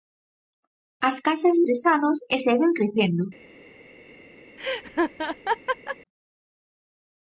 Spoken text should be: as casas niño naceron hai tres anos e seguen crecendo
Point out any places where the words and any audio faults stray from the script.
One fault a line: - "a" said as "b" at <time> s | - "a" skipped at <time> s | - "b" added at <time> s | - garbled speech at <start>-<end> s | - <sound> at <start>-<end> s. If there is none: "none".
- "niño naceron hai" skipped at 1.6 s
- laugh at 4.6-6.0 s